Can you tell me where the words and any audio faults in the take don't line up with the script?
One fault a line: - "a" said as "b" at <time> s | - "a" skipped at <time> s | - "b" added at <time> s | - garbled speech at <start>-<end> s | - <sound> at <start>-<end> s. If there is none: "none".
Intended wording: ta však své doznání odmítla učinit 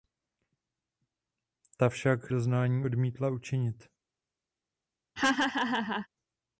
- "své" skipped at 2.3 s
- laugh at 5.2-6.1 s